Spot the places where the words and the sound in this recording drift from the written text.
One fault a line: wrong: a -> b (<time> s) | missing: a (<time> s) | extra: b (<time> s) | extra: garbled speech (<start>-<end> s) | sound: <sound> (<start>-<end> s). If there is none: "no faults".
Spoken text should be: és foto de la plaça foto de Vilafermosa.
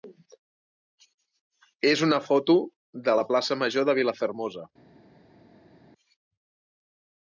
extra: una (2.1 s)
wrong: foto -> major (3.6 s)